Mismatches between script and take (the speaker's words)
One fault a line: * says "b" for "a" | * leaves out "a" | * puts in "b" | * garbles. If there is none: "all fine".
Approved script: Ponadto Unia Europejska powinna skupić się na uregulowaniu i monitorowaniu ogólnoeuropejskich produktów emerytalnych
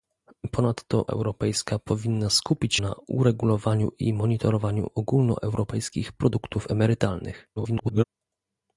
* leaves out "Unia"
* leaves out "się"
* garbles